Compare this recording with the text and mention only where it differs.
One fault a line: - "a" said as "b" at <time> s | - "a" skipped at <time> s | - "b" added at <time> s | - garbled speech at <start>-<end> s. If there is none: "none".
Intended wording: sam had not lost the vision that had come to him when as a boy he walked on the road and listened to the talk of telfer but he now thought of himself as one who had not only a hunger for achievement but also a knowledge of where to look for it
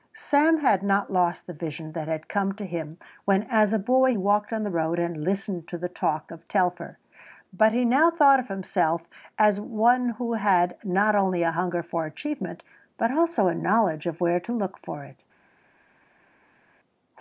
- "he" skipped at 4.2 s